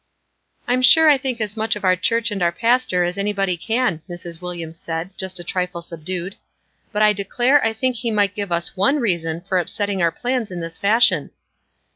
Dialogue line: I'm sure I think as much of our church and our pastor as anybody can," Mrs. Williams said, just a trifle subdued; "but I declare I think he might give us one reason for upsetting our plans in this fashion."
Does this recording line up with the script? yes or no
yes